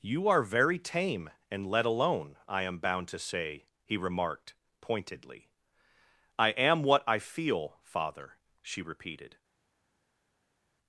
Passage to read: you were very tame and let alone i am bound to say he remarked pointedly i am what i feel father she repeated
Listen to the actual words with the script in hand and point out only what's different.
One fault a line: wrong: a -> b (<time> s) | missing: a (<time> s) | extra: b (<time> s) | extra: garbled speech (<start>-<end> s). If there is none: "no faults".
wrong: were -> are (0.3 s)